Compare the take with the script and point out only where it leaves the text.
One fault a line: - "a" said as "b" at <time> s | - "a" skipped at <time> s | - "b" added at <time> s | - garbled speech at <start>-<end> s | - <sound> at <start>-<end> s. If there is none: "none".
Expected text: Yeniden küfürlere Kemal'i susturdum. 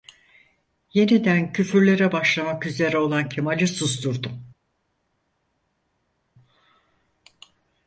- "başlamak üzere olan" added at 2.1 s